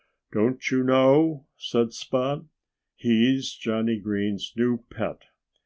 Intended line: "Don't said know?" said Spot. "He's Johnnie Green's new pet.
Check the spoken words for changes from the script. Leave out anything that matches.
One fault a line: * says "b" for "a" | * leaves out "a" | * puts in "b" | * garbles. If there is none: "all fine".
* says "you" for "said"